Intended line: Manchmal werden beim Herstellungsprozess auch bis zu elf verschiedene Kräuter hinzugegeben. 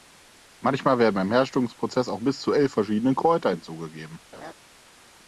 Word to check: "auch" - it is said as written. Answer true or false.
true